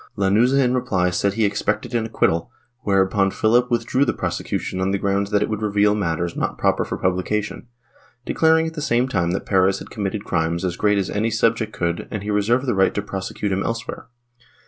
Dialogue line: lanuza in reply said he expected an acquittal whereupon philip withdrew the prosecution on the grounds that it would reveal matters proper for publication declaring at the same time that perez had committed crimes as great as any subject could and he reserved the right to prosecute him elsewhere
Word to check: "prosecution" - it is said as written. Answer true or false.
true